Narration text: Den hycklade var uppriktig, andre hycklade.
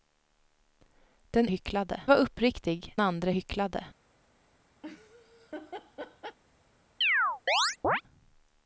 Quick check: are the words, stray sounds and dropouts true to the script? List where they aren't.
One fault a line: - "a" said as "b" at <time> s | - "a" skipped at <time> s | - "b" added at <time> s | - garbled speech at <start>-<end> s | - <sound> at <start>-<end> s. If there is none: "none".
- laugh at 4.8-6.4 s
- chirp at 7.0-8.0 s